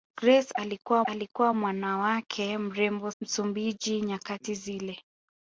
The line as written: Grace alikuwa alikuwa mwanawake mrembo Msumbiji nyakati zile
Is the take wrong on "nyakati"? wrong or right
right